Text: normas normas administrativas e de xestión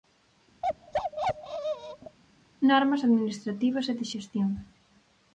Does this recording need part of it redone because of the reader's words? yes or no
yes